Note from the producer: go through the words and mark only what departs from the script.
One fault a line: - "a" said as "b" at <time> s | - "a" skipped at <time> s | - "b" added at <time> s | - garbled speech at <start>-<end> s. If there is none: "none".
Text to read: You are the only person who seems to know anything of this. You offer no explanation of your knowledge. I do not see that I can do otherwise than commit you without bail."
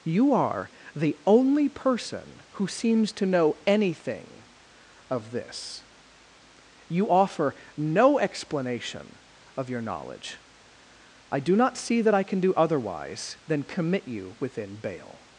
- "without" said as "within" at 14.4 s